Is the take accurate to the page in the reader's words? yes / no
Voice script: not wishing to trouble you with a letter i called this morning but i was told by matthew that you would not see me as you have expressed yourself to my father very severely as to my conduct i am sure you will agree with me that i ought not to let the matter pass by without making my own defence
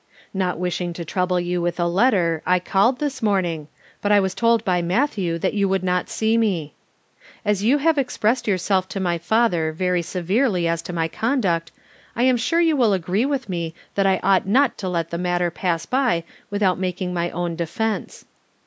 yes